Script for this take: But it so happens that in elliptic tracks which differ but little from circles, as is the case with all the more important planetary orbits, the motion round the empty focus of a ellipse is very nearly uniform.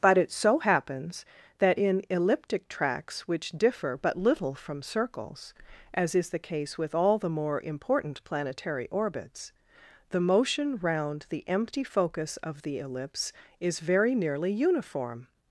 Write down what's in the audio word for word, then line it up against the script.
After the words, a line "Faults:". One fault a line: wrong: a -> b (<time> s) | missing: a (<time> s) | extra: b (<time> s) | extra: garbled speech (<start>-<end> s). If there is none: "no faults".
But it so happens that in elliptic tracks which differ but little from circles, as is the case with all the more important planetary orbits, the motion round the empty focus of the ellipse is very nearly uniform.
Faults:
wrong: a -> the (12.6 s)